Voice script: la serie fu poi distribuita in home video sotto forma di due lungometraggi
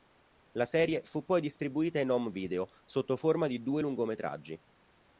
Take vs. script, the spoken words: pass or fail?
pass